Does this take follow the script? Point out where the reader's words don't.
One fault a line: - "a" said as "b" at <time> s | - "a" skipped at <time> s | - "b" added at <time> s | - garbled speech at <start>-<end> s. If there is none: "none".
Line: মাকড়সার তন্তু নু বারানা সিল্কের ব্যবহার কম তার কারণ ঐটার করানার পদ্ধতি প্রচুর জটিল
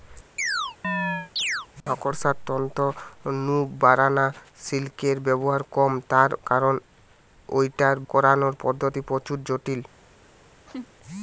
none